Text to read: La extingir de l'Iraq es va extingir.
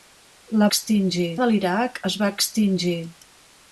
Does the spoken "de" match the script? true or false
true